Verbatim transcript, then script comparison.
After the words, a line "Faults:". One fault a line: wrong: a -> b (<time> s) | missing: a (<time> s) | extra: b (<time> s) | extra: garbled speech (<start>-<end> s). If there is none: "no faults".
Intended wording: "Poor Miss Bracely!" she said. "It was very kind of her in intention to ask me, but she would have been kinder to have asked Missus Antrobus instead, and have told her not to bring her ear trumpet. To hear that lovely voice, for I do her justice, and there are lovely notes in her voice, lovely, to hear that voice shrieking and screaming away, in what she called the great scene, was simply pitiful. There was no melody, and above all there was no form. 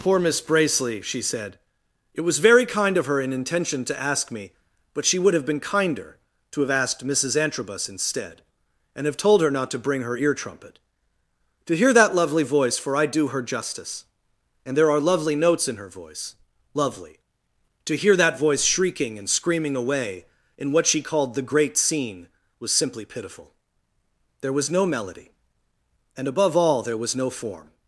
"Poor Miss Bracely!" she said. "It was very kind of her in intention to ask me, but she would have been kinder to have asked Missus Antrobus instead, and have told her not to bring her ear trumpet. To hear that lovely voice, for I do her justice, and there are lovely notes in her voice, lovely, to hear that voice shrieking and screaming away, in what she called the great scene, was simply pitiful. There was no melody, and above all there was no form.
Faults:
no faults